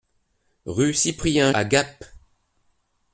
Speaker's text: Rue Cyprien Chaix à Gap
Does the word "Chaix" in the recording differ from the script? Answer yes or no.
yes